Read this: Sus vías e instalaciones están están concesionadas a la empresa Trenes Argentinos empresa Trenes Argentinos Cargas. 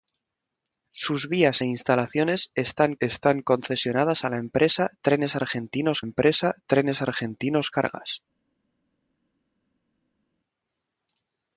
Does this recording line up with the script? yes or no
yes